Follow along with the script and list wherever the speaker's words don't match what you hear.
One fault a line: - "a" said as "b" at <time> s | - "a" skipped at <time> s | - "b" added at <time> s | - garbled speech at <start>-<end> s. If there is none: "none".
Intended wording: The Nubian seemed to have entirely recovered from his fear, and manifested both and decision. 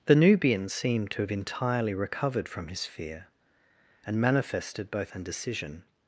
none